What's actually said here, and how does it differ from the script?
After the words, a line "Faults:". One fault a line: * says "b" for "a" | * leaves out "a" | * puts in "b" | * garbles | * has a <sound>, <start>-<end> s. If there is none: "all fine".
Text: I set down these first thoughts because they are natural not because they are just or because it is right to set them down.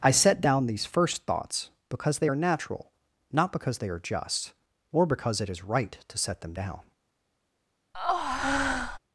I set down these first thoughts because they are natural not because they are just or because it is right to set them down.
Faults:
* has a breath, 7.9-9.0 s